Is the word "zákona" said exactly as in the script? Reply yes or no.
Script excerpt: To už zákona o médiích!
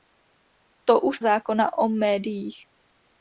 yes